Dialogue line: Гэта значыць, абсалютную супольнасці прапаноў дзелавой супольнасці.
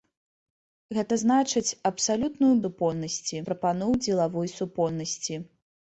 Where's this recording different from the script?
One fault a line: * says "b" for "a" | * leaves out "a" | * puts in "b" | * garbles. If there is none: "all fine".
all fine